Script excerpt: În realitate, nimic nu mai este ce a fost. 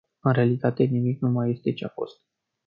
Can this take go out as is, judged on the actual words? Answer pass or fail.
pass